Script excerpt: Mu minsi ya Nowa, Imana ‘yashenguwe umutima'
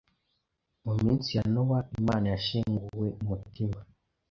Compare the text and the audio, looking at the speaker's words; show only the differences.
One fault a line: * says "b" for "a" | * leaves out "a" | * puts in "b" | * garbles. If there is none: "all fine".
all fine